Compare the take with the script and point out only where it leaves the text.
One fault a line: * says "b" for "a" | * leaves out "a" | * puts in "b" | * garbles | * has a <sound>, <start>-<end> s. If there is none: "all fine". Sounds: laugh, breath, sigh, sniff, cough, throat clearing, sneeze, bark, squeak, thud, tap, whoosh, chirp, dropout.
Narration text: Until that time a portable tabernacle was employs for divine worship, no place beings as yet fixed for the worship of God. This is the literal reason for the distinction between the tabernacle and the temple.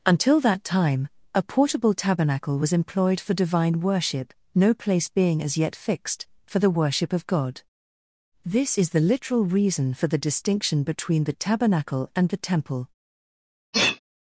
* says "employed" for "employs"
* says "being" for "beings"
* has a sneeze, 13.7-14.0 s